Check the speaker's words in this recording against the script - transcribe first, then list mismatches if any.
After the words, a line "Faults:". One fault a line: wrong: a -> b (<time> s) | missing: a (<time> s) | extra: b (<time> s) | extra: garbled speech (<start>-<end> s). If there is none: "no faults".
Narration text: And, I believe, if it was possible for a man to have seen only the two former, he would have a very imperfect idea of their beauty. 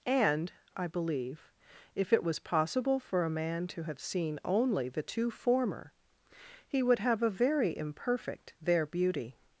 And, I believe, if it was possible for a man to have seen only the two former, he would have a very imperfect their beauty.
Faults:
missing: idea of (8.6 s)